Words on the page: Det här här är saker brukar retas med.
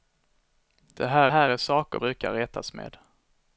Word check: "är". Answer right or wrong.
right